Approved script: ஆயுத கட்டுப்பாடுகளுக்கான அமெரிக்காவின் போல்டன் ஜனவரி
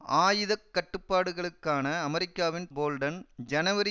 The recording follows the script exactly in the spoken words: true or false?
true